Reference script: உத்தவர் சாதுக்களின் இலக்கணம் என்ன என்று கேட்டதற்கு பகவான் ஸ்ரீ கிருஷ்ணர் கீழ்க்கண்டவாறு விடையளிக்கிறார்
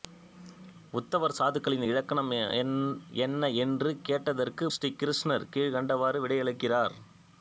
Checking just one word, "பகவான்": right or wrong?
wrong